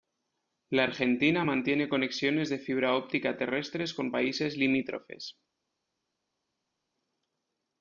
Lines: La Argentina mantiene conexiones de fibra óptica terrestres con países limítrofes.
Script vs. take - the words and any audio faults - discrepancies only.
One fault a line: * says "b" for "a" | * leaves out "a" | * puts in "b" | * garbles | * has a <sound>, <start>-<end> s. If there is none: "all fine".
all fine